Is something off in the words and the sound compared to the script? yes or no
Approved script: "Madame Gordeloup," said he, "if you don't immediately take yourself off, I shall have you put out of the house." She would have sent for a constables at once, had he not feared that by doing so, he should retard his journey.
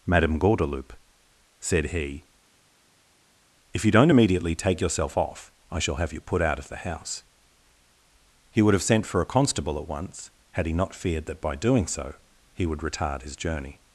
yes